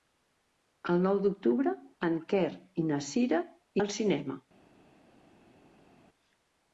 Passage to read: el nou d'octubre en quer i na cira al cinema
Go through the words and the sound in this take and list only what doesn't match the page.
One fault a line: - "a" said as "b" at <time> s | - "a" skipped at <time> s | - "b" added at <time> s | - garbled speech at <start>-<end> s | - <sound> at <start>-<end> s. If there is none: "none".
none